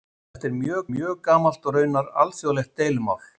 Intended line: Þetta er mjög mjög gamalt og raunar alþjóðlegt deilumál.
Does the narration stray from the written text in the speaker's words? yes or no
no